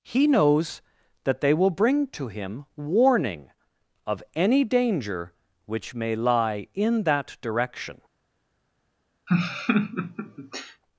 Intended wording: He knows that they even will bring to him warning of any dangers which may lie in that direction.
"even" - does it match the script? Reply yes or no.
no